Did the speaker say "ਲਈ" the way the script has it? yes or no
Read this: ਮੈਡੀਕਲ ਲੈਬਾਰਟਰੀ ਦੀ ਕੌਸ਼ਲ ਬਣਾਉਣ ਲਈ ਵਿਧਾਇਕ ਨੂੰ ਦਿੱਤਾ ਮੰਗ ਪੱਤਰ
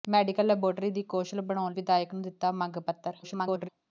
no